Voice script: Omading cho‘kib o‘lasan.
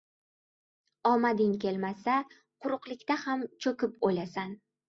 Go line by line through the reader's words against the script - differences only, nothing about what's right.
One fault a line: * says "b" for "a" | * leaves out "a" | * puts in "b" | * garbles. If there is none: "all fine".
* puts in "kelmasa quruqlikda ham"